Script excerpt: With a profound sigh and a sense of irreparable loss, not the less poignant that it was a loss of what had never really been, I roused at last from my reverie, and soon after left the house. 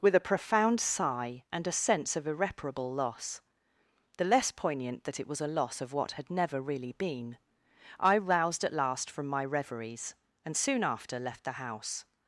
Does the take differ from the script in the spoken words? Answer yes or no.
yes